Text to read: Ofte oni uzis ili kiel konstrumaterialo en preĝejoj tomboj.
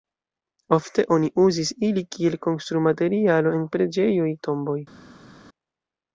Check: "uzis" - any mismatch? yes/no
no